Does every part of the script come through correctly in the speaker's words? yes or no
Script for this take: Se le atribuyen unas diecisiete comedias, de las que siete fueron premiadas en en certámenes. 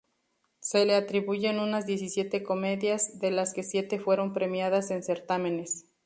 no